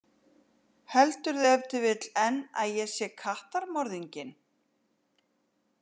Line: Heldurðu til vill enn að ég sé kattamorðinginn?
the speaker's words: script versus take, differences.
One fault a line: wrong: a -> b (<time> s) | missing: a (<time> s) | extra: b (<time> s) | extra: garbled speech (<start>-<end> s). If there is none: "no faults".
extra: ef (1.5 s)